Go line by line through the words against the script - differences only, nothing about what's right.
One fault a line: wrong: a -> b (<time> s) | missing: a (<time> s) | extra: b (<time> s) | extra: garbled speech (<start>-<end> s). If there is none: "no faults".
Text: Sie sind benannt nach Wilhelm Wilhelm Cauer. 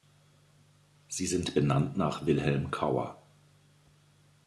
missing: Wilhelm (2.7 s)